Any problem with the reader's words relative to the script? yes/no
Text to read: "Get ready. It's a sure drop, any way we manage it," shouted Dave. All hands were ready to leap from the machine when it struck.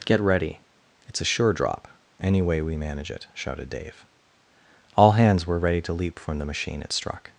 yes